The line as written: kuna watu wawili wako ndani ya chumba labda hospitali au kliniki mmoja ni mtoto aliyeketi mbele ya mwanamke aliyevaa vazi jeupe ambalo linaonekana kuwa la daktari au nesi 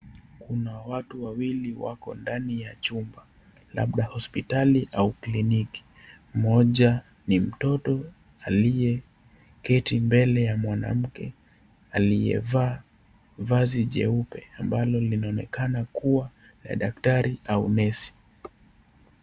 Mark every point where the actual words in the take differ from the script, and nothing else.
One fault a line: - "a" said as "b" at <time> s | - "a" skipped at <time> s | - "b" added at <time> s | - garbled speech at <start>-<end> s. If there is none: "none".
none